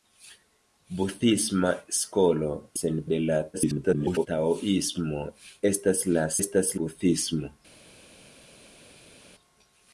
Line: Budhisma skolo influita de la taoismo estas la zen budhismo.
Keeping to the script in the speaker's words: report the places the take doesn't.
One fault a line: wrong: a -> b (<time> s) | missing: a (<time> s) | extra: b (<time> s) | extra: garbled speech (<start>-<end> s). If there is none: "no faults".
wrong: influita -> zen (2.8 s)
extra: garbled speech (3.5-4.3 s)
wrong: zen -> estas (6.4 s)